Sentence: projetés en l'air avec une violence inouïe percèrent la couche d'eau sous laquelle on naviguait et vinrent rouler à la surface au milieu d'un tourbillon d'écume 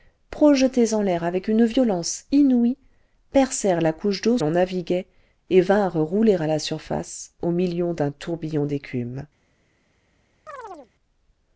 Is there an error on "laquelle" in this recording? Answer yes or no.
yes